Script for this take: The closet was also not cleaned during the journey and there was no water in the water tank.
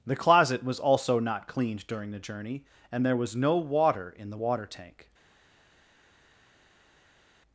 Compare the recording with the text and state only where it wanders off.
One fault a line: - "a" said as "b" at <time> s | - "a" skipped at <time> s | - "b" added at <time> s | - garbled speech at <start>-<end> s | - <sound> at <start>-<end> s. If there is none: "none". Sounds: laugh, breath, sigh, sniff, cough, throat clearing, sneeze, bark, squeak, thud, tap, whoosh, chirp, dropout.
none